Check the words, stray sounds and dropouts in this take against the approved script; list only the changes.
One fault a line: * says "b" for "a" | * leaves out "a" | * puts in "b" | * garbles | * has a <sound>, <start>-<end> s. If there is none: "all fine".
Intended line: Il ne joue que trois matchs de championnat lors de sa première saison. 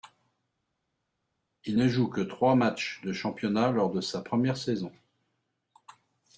all fine